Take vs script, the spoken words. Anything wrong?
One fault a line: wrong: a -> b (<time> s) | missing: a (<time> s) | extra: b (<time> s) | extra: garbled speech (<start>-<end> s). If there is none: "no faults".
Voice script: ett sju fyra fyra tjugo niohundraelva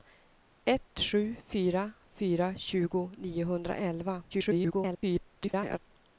extra: garbled speech (4.3-5.8 s)